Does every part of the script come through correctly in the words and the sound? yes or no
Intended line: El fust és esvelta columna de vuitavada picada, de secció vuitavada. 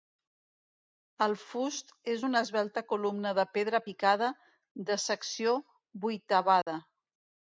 no